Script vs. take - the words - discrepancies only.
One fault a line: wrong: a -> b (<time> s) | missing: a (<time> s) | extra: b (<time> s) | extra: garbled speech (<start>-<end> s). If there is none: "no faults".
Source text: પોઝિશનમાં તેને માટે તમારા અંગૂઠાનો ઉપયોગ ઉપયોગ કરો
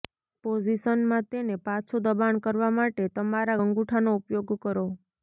extra: પાછું દબાણ કરવા (1.6 s)
missing: ઉપયોગ (4.5 s)